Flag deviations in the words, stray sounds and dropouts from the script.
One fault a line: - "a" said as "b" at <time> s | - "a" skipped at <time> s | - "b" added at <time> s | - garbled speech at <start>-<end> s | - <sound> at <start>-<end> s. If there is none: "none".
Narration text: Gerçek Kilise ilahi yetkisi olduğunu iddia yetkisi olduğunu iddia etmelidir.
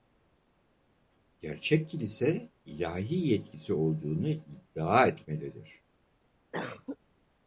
- "yetkisi olduğunu iddia" skipped at 5.1 s
- cough at 6.5-7.0 s